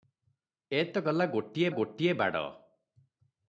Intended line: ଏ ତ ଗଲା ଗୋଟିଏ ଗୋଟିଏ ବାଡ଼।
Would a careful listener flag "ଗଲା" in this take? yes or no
no